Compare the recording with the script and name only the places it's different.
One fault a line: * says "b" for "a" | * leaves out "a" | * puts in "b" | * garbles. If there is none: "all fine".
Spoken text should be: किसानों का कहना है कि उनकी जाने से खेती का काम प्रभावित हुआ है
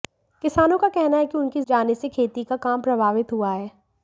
all fine